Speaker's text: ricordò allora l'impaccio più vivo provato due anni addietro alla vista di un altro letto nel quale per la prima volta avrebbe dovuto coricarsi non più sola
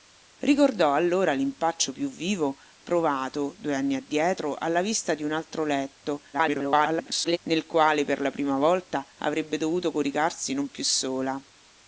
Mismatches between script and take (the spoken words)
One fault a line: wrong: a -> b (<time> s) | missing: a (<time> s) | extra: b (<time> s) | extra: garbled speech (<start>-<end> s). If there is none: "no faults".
extra: garbled speech (6.3-7.4 s)